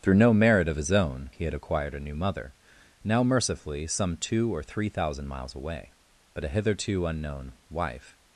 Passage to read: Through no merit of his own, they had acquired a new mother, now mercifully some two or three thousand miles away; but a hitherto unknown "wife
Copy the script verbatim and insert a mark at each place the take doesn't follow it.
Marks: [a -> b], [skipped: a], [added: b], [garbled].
Through no merit of his own, [they -> he] had acquired a new mother, now mercifully some two or three thousand miles away; but a hitherto unknown "wife